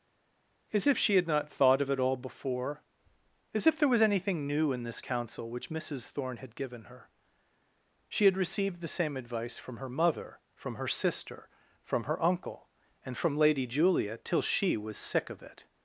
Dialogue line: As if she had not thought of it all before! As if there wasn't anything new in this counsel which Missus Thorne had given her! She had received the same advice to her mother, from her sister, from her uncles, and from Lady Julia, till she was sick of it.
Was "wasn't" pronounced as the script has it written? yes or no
no